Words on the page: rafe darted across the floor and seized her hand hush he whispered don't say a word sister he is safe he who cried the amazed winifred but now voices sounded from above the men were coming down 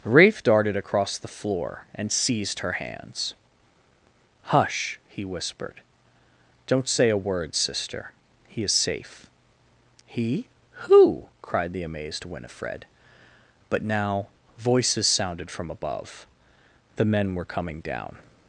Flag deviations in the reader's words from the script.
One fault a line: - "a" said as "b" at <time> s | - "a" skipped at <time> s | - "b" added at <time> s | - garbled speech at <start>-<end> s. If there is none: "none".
- "hand" said as "hands" at 2.7 s